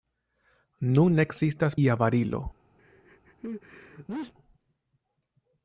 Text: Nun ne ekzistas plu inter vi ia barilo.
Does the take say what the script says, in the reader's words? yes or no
no